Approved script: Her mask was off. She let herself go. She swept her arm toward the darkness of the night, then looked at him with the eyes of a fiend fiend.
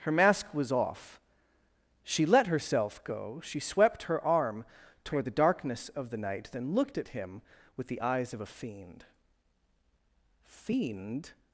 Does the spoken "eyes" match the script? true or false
true